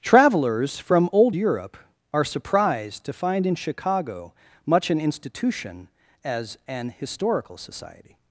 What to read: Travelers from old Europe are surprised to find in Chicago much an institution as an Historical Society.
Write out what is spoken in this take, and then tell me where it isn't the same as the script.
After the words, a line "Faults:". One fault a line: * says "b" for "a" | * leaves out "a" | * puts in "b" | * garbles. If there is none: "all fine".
Travelers from old Europe are surprised to find in Chicago much an institution as an Historical Society.
Faults:
all fine